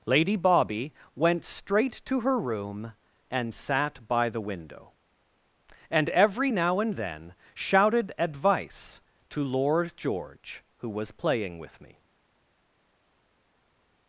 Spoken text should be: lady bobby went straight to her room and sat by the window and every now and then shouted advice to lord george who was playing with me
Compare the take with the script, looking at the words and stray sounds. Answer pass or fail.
pass